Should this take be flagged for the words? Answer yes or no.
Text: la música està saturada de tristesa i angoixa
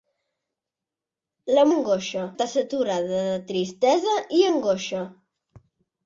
yes